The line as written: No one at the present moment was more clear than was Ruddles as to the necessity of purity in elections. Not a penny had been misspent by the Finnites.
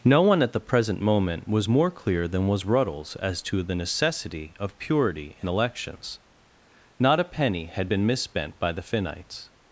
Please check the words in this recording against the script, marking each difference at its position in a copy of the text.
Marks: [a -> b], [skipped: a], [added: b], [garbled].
No one at the present moment was more clear than was Ruddles as to the necessity of purity in elections. Not a penny had been misspent by the Finnites.